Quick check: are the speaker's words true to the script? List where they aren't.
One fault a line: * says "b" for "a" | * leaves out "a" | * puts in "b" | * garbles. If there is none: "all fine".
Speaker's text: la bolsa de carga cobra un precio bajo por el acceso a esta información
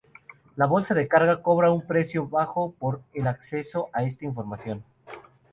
all fine